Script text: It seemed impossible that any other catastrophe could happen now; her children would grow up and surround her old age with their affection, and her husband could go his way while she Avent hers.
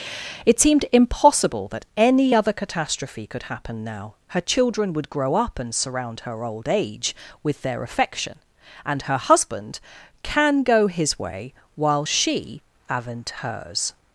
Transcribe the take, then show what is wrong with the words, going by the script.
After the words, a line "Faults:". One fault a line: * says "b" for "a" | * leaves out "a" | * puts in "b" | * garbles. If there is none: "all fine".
It seemed impossible that any other catastrophe could happen now; her children would grow up and surround her old age with their affection, and her husband can go his way while she Avent hers.
Faults:
* says "can" for "could"